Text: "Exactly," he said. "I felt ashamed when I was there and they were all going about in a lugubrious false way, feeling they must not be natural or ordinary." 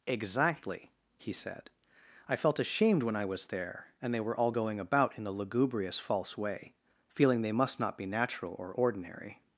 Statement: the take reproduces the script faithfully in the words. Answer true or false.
false